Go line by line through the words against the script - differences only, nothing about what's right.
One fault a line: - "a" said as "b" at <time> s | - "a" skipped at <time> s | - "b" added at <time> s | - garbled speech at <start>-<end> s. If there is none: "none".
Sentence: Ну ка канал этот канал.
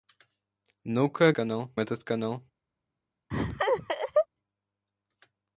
none